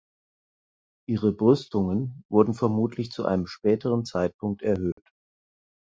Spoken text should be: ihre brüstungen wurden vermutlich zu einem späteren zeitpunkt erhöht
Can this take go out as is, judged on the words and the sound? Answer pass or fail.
fail